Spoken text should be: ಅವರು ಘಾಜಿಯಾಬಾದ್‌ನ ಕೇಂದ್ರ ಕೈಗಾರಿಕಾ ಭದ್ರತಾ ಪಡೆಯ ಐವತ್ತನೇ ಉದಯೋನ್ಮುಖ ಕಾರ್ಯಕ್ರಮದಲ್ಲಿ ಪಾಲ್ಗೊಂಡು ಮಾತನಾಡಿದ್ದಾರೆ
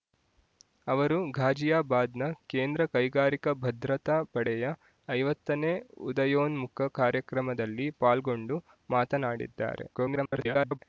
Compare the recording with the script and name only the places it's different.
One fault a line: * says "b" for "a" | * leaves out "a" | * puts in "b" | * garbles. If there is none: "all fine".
* garbles